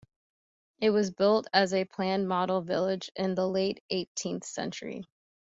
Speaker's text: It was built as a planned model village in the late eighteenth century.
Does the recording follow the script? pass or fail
pass